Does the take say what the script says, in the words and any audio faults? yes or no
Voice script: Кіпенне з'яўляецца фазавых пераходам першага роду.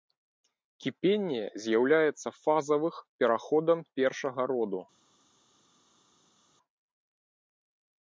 yes